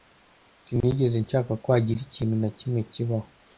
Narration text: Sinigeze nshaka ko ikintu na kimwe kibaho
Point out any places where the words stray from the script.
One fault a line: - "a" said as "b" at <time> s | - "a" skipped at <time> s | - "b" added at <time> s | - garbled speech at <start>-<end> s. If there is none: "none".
- "hagira" added at 1.7 s